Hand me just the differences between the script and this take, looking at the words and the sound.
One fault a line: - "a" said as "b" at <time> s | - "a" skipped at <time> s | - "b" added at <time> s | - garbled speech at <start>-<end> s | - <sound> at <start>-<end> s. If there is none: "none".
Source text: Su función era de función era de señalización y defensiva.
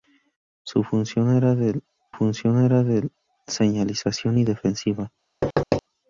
- thud at 5.4-5.8 s